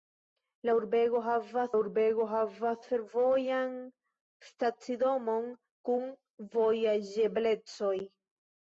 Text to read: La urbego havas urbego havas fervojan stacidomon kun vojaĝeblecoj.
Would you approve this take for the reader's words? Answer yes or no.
yes